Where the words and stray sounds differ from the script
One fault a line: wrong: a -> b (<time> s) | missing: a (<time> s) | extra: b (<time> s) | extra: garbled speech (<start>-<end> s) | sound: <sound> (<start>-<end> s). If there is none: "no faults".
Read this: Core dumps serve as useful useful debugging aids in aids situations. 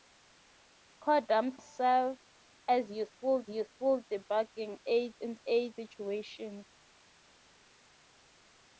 no faults